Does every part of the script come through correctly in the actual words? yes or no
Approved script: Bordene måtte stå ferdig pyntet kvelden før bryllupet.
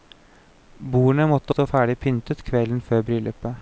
yes